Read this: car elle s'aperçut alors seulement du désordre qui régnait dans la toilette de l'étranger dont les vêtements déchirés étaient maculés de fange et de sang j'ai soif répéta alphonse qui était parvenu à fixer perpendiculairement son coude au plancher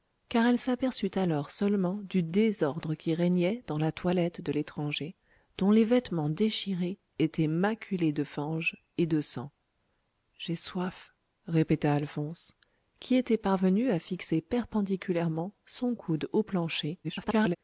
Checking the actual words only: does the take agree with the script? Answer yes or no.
no